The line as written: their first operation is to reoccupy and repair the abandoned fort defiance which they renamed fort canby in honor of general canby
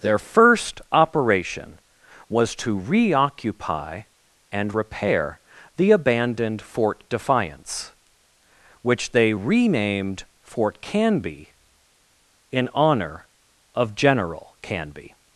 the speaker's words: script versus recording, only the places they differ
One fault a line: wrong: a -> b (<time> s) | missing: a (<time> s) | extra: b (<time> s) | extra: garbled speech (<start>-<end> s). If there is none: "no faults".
wrong: is -> was (2.3 s)